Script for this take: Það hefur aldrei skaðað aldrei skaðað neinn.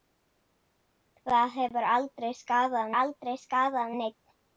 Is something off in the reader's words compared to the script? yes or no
no